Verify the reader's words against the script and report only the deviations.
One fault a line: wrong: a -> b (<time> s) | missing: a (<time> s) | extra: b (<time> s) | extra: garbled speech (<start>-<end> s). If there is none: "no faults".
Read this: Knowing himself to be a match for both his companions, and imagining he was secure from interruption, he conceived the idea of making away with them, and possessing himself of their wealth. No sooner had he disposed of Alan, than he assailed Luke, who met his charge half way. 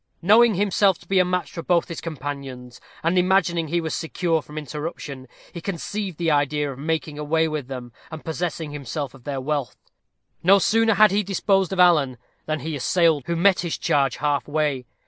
missing: Luke (13.2 s)